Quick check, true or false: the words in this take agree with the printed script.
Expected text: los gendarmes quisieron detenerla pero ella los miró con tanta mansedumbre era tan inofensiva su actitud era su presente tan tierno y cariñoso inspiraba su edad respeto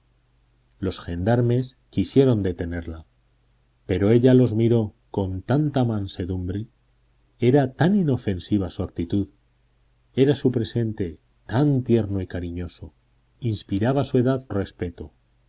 true